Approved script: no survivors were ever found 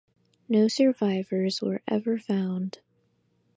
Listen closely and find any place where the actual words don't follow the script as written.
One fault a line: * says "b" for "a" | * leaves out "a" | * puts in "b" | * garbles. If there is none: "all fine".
all fine